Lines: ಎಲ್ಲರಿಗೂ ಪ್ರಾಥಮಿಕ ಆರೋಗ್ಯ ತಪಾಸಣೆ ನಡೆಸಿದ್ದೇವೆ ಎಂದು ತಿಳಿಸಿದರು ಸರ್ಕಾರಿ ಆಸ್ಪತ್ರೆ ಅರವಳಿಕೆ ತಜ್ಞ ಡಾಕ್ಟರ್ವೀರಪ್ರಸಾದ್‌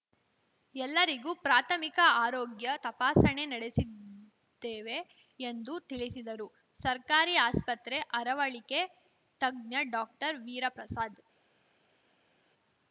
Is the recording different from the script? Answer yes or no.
no